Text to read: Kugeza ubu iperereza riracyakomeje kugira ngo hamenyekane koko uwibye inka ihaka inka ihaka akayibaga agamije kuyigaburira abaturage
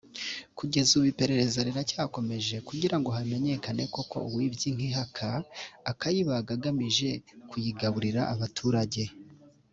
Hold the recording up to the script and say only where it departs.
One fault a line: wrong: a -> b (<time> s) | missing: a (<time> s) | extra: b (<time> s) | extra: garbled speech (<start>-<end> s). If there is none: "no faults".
missing: inka ihaka (5.3 s)